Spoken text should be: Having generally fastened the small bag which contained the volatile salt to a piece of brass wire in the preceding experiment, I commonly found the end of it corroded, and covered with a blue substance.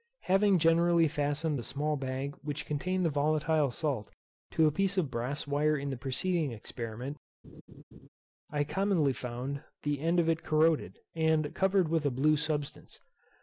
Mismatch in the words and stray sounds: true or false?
true